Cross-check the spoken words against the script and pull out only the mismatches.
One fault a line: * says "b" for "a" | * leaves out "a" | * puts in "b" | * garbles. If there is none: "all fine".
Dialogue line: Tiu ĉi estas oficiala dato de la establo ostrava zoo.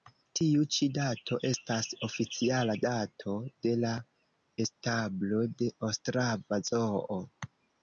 * puts in "dato"
* puts in "de"